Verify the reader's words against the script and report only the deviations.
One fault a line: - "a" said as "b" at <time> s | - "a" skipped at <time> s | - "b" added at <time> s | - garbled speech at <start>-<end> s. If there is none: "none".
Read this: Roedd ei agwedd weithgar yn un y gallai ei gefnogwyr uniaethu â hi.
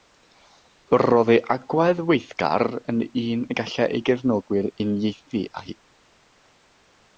none